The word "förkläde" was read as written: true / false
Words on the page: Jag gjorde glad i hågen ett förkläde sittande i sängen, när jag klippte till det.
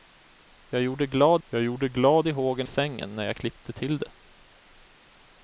false